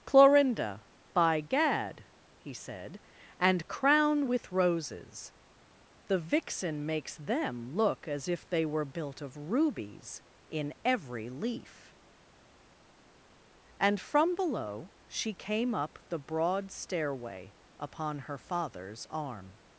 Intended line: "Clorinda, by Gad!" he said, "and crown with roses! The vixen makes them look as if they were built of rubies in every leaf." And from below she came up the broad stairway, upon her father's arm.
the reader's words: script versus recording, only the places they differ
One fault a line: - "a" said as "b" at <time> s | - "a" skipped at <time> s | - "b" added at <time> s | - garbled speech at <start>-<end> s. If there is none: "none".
none